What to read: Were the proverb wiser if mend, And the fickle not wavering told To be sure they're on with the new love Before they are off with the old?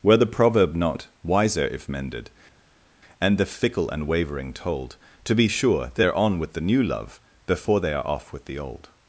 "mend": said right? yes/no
no